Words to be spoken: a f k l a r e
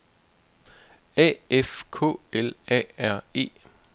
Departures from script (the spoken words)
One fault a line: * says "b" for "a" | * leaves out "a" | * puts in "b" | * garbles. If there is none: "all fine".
all fine